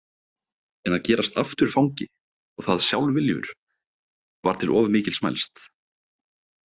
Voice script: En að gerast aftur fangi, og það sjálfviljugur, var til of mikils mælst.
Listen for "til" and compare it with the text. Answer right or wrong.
right